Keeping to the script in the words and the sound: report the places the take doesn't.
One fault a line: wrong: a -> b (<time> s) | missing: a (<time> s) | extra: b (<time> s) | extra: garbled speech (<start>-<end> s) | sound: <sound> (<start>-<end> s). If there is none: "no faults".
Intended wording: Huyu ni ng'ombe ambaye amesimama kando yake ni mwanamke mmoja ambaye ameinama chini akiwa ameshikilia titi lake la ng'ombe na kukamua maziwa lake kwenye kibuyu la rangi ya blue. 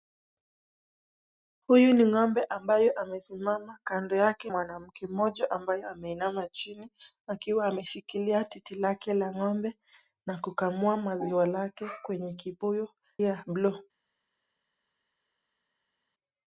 missing: ni (4.5 s)
missing: la rangi (12.9 s)